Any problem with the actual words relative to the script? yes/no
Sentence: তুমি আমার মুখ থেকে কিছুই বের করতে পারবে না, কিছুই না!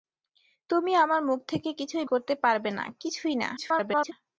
yes